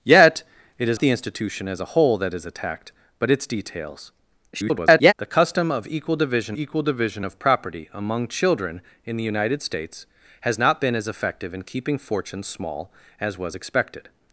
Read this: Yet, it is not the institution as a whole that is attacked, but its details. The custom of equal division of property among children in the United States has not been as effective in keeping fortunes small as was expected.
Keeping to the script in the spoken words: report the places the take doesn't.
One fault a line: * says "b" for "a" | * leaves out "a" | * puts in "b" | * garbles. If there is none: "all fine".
* leaves out "not"
* garbles
* puts in "equal division"